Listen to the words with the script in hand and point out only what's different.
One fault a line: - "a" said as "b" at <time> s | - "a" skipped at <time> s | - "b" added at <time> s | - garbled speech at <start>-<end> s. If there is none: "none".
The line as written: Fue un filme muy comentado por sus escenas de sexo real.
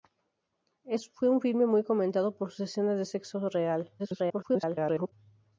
- garbled speech at 4.0-5.1 s